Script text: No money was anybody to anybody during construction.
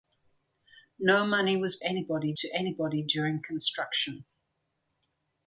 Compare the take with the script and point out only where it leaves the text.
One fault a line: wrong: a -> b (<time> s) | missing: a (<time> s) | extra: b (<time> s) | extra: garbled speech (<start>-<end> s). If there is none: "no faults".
no faults